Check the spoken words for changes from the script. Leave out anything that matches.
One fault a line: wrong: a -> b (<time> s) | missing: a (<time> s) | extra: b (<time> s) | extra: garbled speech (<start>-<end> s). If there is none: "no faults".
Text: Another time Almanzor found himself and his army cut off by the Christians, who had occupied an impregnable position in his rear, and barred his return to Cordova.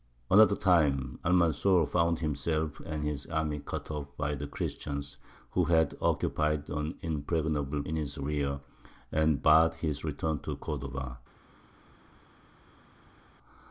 missing: position (7.8 s)